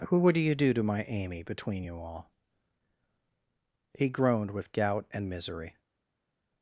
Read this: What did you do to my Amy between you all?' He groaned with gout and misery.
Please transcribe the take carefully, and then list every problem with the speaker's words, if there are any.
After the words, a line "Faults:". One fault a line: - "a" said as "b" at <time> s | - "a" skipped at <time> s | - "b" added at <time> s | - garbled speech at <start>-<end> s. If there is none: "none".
Who would you do to my Amy between you all?' He groaned with gout and misery.
Faults:
- "What did" said as "Who would" at 0.1 s